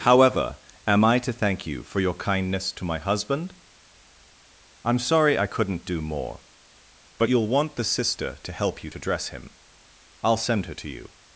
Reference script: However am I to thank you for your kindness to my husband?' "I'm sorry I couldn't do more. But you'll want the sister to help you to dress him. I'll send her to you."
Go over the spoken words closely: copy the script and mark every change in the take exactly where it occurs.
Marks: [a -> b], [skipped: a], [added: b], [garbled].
However am I to thank you for your kindness to my husband?' "I'm sorry I couldn't do more. But you'll want the sister to help you to dress him. I'll send her to you."